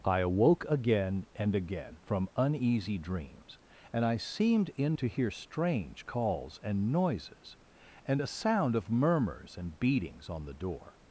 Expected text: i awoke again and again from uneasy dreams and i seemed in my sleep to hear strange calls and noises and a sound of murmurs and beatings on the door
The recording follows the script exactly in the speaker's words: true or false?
false